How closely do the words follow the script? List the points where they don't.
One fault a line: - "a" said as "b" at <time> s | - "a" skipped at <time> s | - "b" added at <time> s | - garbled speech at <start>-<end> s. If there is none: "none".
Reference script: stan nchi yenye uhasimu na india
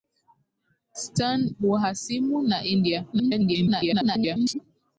- "nchi yenye" skipped at 1.5 s
- garbled speech at 3.1-4.6 s